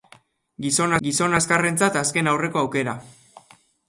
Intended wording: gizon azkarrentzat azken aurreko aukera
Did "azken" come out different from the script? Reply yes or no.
no